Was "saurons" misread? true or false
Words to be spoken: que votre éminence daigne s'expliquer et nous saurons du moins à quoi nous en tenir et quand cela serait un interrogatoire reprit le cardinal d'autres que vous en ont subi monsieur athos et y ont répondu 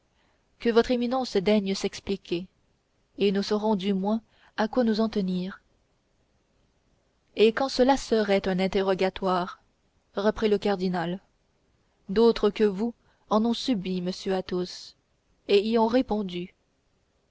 false